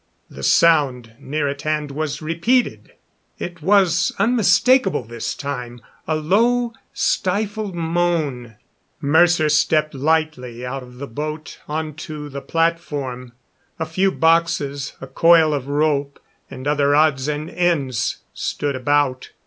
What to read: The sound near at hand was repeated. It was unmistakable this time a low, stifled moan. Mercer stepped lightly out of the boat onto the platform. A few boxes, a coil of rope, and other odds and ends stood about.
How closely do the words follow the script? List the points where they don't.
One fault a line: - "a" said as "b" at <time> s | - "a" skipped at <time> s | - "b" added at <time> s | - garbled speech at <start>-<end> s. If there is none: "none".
none